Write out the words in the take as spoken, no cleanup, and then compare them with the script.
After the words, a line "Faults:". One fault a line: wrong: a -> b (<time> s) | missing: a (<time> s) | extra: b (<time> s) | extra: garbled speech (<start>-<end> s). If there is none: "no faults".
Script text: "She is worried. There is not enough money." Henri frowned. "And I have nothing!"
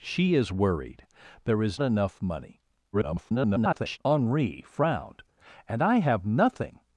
"She is worried. There is enough money." [garbled] Henri frowned. "And I have nothing!"
Faults:
missing: not (1.8 s)
extra: garbled speech (2.9-4.0 s)